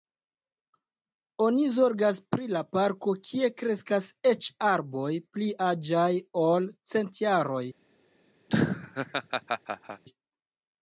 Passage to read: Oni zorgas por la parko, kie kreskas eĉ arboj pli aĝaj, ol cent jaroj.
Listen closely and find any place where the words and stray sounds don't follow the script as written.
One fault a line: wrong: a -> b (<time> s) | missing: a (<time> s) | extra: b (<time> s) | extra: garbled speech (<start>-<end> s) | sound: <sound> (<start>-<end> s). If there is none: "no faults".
wrong: por -> pri (2.4 s)
sound: laugh (8.5-10.0 s)